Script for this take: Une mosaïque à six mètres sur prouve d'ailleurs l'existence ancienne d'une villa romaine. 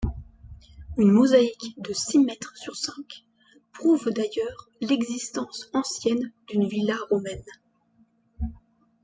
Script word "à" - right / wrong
wrong